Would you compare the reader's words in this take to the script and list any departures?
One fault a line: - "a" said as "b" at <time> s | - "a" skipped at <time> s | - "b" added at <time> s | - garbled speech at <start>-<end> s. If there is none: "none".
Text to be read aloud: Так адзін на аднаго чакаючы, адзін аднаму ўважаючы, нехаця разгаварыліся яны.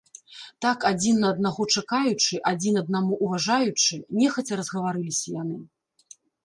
none